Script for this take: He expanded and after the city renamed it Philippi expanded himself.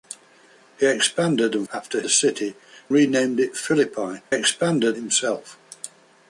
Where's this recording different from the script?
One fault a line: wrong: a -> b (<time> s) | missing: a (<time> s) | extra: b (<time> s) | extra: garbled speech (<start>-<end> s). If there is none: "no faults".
no faults